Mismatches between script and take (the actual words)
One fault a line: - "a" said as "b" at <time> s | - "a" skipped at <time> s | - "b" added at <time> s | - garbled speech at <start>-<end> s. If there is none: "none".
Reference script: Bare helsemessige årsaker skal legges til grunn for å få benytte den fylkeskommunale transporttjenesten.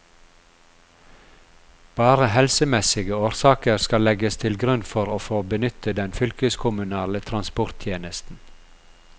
none